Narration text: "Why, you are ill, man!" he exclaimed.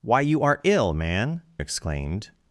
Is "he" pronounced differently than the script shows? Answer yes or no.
yes